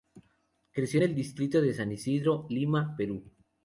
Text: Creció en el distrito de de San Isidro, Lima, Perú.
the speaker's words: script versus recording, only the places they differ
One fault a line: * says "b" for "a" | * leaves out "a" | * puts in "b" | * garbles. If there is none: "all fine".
* leaves out "de"